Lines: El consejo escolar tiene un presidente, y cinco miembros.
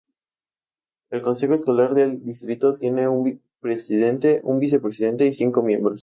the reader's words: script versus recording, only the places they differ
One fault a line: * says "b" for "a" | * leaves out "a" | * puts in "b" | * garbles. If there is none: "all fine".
* puts in "del distrito"
* puts in "un vicepresidente"